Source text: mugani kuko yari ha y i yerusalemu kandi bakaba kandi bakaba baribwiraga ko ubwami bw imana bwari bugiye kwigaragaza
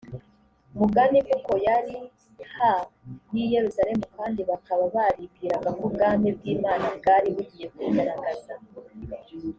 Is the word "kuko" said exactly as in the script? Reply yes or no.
yes